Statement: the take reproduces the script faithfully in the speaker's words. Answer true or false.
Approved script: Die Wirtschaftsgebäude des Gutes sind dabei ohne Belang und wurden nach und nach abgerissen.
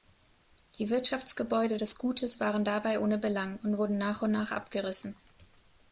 false